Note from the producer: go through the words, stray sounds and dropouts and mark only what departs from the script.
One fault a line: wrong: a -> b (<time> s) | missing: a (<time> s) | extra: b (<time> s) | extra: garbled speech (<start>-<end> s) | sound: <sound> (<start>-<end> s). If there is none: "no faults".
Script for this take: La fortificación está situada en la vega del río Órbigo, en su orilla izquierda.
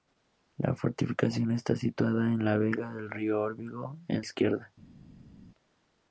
missing: su orilla (4.2 s)